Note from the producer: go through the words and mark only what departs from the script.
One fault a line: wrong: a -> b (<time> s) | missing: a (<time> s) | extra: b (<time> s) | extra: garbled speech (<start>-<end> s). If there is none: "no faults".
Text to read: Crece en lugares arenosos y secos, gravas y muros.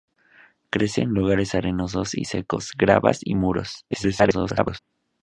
extra: garbled speech (3.9-4.8 s)